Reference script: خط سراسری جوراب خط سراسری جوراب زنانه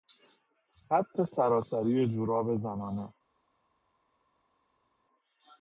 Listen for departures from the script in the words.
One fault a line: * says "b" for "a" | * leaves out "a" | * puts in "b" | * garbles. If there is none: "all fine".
* leaves out "خط سراسری جوراب"